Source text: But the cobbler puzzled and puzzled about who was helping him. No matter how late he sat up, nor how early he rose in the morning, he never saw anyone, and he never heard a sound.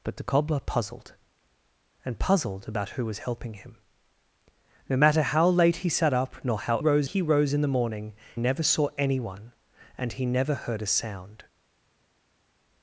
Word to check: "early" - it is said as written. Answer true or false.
false